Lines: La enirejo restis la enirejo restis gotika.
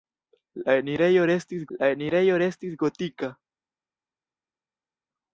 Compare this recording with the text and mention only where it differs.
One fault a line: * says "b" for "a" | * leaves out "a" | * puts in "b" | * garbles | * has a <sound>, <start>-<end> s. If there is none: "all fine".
all fine